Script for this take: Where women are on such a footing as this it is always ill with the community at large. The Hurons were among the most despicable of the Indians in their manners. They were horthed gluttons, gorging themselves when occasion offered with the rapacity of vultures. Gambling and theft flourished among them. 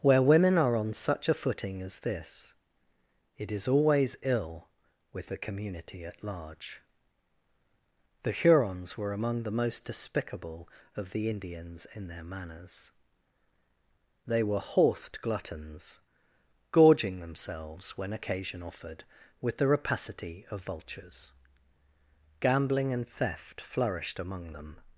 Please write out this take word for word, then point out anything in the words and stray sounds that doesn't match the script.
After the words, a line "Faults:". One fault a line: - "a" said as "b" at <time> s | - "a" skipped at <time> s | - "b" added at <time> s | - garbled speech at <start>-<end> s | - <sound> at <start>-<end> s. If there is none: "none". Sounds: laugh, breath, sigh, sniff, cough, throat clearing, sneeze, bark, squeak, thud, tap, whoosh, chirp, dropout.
Where women are on such a footing as this it is always ill with the community at large. The Hurons were among the most despicable of the Indians in their manners. They were horthed gluttons, gorging themselves when occasion offered with the rapacity of vultures. Gambling and theft flourished among them.
Faults:
none